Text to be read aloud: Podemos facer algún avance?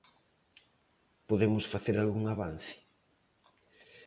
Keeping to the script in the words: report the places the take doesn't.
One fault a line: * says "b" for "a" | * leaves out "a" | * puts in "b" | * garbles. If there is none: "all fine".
all fine